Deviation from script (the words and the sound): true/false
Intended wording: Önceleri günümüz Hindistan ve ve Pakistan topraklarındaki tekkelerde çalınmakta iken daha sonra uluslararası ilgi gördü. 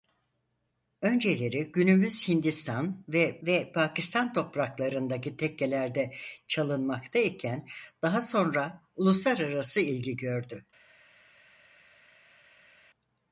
false